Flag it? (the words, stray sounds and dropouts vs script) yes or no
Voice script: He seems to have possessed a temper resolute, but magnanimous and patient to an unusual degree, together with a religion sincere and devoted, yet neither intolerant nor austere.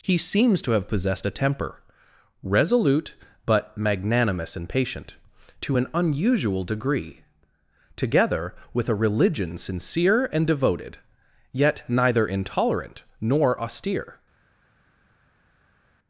no